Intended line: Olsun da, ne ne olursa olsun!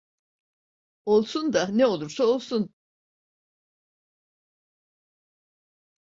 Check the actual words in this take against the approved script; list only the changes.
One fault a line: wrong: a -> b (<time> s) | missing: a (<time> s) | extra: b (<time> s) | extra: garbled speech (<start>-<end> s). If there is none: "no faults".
missing: ne (1.9 s)